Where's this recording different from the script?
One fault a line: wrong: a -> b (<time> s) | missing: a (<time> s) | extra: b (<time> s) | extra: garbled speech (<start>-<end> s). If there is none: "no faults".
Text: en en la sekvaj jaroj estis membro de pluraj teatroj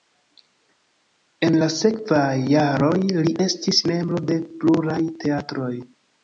missing: en (1.6 s)
extra: li (3.3 s)